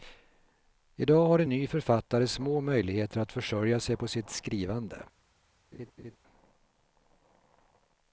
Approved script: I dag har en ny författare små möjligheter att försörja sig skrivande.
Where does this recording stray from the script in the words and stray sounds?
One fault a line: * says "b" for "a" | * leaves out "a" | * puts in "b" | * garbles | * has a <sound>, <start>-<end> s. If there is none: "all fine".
* puts in "på sitt"
* has a laugh, 5.7-6.2 s